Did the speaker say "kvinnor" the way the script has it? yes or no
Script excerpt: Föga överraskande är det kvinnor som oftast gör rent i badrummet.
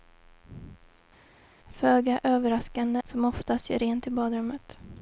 no